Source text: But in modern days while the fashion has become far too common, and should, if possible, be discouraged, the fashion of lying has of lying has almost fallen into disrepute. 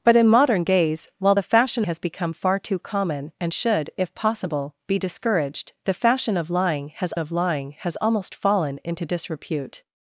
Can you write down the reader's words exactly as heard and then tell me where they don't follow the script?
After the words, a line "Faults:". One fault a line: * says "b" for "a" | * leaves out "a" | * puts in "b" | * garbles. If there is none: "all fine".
But in modern days while the fashion has become far too common, and should, if possible, be discouraged, the fashion of lying has of lying has almost fallen into disrepute.
Faults:
all fine